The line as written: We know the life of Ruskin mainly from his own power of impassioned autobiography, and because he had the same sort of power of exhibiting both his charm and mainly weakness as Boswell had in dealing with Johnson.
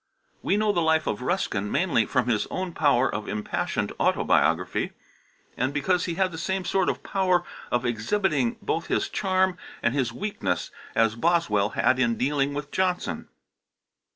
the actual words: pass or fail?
fail